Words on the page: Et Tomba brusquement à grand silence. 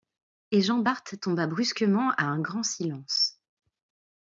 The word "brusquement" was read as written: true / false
true